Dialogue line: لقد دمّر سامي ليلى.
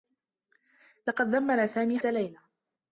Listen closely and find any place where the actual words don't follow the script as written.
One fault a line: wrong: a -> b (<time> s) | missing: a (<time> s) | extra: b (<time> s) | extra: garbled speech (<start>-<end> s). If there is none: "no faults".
no faults